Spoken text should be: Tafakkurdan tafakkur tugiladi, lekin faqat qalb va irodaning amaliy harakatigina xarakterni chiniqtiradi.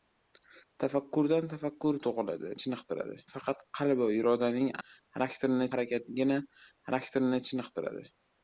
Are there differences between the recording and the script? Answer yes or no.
yes